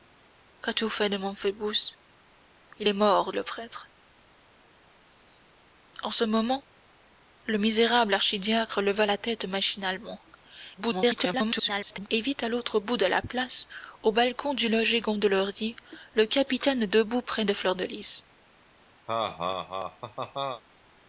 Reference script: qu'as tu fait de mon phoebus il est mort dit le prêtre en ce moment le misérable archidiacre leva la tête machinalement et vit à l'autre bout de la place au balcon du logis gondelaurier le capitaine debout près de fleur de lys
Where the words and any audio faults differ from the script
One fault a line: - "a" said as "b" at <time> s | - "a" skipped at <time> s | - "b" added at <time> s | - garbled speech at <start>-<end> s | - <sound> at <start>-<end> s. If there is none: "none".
- "dit" skipped at 3.3 s
- garbled speech at 10.8-12.1 s
- laugh at 19.1-20.6 s